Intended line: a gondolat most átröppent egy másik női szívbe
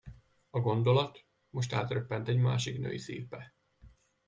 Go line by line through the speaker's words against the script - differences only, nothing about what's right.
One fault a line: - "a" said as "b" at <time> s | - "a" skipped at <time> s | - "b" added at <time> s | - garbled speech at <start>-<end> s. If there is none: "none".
none